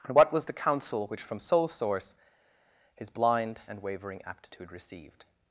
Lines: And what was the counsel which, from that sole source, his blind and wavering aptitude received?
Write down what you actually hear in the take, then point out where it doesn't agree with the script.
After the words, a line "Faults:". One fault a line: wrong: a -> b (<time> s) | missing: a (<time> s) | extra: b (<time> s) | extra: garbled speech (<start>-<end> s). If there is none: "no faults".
And what was the counsel which, from sole source, his blind and wavering aptitude received?
Faults:
missing: that (1.4 s)